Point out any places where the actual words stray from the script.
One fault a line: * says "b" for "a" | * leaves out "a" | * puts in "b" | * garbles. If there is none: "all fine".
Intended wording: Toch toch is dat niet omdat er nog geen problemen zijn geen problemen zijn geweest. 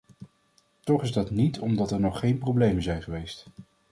* leaves out "toch"
* leaves out "geen problemen zijn"